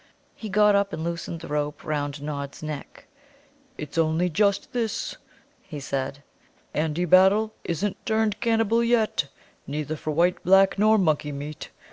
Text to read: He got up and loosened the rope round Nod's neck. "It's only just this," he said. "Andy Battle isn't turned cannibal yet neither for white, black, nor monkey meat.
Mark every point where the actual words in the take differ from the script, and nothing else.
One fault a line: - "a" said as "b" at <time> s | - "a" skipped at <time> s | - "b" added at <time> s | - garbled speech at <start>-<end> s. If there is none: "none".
none